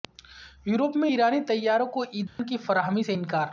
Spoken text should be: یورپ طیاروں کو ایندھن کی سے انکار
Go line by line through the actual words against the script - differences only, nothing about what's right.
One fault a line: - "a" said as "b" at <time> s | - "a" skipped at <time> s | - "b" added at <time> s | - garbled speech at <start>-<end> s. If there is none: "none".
- "میں ایرانی" added at 1.0 s
- "فراہمی" added at 2.6 s